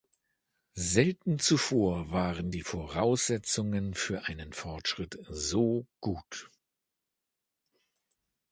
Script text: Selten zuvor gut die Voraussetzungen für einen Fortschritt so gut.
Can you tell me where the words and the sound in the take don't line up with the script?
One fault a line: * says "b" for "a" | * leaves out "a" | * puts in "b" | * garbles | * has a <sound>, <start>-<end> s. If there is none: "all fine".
* says "waren" for "gut"